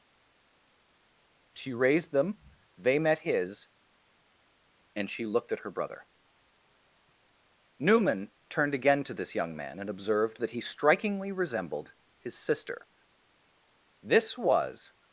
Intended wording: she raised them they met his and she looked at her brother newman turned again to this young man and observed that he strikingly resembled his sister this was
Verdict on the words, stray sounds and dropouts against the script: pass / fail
pass